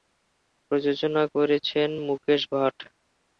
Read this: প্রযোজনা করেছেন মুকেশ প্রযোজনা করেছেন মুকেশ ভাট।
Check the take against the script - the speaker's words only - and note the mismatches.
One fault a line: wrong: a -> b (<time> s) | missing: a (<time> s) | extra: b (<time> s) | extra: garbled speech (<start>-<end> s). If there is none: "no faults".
missing: প্রযোজনা করেছেন মুকেশ (2.4 s)